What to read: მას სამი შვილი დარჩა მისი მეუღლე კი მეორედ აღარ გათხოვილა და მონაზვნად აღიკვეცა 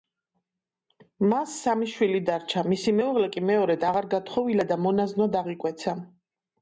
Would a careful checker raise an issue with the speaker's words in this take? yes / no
no